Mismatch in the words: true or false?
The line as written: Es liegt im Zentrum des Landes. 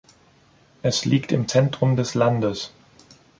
false